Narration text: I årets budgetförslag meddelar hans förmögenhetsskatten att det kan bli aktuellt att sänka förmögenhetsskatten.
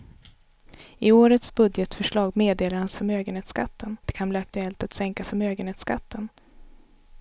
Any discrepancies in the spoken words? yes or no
no